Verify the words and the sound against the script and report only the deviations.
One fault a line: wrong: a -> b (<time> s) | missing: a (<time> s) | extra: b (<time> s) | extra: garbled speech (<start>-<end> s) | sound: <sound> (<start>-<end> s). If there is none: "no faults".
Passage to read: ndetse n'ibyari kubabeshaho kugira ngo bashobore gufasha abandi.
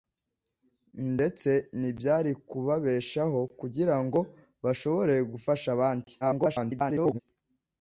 extra: garbled speech (6.2-7.2 s)